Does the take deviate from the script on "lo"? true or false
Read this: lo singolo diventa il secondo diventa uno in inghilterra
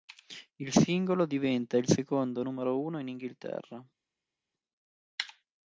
true